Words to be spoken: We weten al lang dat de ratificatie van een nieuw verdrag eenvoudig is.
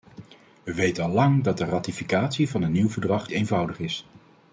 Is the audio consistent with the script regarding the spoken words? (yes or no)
yes